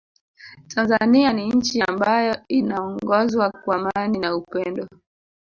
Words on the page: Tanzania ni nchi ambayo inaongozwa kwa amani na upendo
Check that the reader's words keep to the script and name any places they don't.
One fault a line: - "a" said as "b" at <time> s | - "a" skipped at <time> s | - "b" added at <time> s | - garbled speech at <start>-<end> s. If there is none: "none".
none